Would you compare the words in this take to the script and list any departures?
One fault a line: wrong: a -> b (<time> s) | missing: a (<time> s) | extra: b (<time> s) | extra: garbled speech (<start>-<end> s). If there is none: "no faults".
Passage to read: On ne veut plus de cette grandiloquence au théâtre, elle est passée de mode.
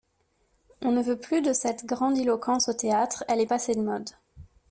no faults